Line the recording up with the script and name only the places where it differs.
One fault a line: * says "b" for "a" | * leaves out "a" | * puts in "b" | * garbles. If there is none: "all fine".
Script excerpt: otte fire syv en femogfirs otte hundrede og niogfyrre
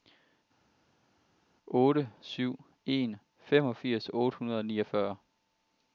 * leaves out "fire"